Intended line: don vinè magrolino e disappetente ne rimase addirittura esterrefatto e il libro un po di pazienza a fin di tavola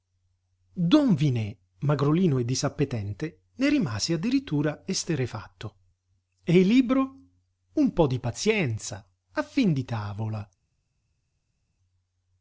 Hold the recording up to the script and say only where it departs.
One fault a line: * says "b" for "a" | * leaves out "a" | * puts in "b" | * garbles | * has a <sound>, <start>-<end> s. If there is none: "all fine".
all fine